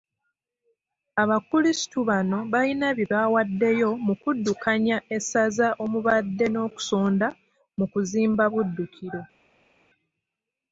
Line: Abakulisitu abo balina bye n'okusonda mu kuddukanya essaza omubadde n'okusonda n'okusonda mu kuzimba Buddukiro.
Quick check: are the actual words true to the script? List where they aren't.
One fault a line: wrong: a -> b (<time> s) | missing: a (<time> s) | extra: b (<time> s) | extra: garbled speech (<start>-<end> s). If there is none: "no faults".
wrong: abo -> bano (2.1 s)
wrong: n'okusonda -> bawaddeyo (3.1 s)
missing: n'okusonda (7.3 s)